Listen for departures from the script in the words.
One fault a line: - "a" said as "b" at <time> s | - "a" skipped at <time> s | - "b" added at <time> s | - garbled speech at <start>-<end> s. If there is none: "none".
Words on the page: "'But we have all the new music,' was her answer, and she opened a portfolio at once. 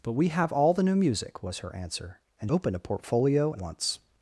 - "she" skipped at 2.5 s
- "at" skipped at 3.5 s